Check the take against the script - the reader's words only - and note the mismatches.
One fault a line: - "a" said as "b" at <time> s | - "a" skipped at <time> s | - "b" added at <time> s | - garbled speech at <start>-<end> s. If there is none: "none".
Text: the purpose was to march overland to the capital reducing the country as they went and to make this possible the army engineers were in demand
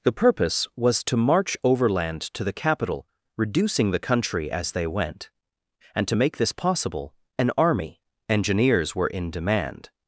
- "the" said as "an" at 7.4 s